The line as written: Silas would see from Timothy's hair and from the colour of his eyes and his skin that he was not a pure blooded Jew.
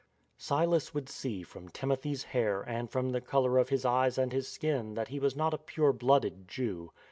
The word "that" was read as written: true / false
true